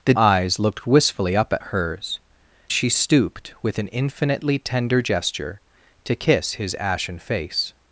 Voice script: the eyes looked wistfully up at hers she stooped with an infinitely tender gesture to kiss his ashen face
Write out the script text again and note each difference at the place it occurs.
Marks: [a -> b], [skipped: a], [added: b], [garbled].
the eyes looked wistfully up at hers she stooped with an infinitely tender gesture to kiss his ashen face